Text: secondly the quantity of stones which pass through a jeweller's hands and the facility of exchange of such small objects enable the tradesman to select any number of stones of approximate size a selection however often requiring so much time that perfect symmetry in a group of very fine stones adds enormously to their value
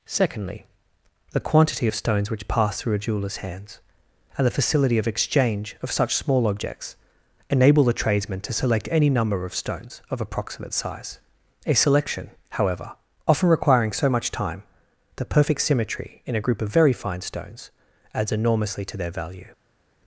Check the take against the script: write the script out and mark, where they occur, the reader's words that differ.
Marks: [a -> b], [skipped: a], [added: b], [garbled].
secondly the quantity of stones which pass through a jeweller's hands and the facility of exchange of such small objects enable the tradesman to select any number of stones of approximate size a selection however often requiring so much time [that -> the] perfect symmetry in a group of very fine stones adds enormously to their value